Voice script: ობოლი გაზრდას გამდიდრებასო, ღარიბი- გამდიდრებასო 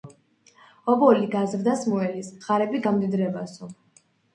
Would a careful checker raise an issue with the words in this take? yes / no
yes